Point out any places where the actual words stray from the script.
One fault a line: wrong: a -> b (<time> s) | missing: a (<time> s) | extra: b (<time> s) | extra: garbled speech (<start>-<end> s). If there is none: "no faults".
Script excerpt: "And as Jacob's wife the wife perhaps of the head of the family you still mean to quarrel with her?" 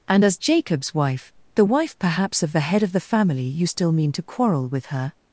no faults